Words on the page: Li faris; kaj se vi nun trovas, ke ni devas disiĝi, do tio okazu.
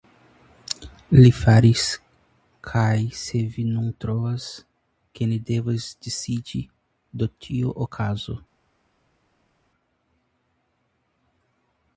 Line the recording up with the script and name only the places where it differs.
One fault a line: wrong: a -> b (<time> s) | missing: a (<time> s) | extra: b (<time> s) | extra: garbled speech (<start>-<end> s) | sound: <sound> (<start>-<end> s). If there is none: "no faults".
no faults